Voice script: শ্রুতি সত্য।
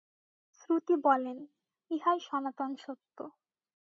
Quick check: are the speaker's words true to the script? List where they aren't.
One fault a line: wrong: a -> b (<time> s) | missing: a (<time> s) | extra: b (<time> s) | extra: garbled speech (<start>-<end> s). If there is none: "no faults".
extra: বলেন ইহাই সনাতন (1.0 s)